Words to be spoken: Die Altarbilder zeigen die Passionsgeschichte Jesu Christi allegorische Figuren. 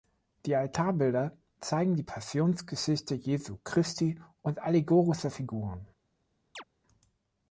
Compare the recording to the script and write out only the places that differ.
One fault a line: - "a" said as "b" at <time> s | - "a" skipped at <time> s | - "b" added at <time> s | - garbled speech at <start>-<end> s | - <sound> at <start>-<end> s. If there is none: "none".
- "und" added at 4.4 s
- chirp at 6.6-6.6 s